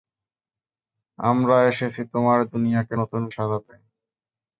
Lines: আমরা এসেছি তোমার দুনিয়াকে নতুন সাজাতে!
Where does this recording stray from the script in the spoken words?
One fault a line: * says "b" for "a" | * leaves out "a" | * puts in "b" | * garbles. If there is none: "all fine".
all fine